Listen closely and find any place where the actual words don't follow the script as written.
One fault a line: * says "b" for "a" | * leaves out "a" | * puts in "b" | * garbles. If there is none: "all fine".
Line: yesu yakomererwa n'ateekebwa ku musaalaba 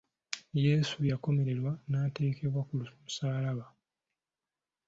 all fine